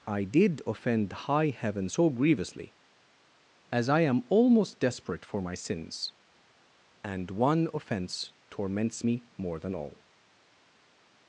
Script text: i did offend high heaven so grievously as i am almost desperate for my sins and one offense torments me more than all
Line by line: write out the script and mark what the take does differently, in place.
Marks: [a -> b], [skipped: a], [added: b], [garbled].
i did offend high heaven so grievously as i am almost desperate for my sins and one offense torments me more than all